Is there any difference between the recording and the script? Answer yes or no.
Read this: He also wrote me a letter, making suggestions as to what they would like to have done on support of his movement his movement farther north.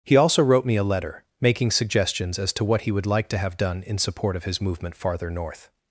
yes